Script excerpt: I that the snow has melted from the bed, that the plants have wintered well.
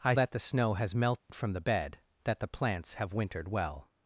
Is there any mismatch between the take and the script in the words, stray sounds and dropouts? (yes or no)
yes